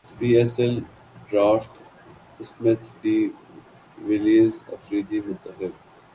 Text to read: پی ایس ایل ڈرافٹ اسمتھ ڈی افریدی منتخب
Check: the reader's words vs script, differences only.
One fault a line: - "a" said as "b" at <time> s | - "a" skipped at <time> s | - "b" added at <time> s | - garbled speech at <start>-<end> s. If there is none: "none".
- "ویلیئرز" added at 4.1 s